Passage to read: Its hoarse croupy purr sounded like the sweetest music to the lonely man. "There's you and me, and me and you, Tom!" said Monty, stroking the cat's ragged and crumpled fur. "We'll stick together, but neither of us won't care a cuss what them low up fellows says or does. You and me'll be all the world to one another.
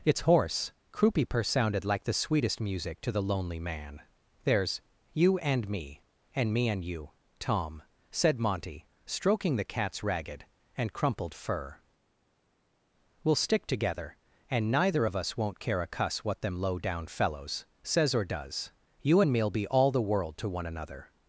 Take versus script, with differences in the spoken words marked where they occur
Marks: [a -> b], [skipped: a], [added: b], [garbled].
Its hoarse croupy purr sounded like the sweetest music to the lonely man. "There's you and me, and me and you, Tom!" said Monty, stroking the cat's ragged and crumpled fur. "We'll stick together, [but -> and] neither of us won't care a cuss what them low [up -> down] fellows says or does. You and me'll be all the world to one another.